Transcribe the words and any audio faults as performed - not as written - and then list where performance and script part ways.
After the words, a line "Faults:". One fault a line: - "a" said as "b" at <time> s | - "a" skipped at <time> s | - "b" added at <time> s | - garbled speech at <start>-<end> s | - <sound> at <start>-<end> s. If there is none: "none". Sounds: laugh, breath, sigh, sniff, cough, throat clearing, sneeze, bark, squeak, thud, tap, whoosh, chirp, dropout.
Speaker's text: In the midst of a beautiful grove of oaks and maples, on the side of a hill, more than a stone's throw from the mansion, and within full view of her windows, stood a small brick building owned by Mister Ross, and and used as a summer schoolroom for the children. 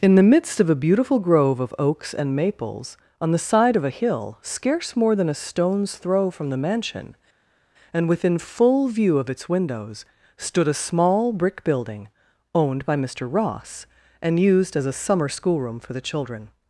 In the midst of a beautiful grove of oaks and maples, on the side of a hill, scarce more than a stone's throw from the mansion, and within full view of its windows, stood a small brick building owned by Mister Ross, and used as a summer schoolroom for the children.
Faults:
- "scarce" added at 4.4 s
- "her" said as "its" at 9.3 s
- "and" skipped at 14.4 s